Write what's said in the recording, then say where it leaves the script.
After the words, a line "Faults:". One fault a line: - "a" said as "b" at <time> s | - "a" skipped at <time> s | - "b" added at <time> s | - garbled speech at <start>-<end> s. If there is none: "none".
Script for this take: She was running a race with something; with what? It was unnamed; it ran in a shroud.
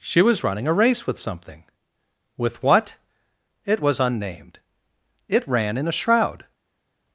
She was running a race with something; with what? It was unnamed; it ran in a shroud.
Faults:
none